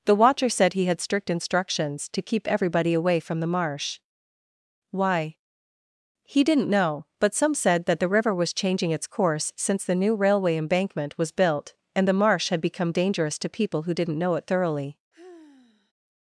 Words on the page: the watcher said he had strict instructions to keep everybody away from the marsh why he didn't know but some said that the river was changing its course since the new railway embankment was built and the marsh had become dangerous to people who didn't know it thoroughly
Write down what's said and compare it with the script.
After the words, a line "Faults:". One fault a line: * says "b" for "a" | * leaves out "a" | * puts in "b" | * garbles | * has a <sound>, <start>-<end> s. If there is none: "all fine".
the watcher said he had strict instructions to keep everybody away from the marsh why he didn't know but some said that the river was changing its course since the new railway embankment was built and the marsh had become dangerous to people who didn't know it thoroughly
Faults:
* has a sigh, 15.1-15.9 s